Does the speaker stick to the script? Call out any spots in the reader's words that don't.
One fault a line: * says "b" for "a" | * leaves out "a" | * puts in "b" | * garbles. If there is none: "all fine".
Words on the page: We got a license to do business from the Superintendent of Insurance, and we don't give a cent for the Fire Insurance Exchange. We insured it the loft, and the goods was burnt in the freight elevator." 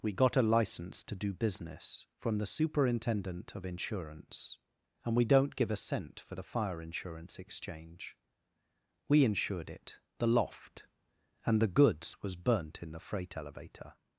all fine